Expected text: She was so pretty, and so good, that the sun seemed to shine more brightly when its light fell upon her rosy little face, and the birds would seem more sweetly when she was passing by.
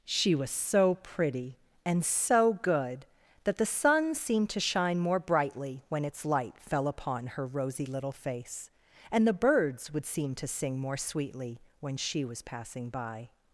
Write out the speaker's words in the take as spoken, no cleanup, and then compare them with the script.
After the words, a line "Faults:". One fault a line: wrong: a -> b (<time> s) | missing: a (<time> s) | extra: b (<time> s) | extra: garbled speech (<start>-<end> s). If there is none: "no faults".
She was so pretty, and so good, that the sun seemed to shine more brightly when its light fell upon her rosy little face, and the birds would seem to sing more sweetly when she was passing by.
Faults:
extra: to sing (10.4 s)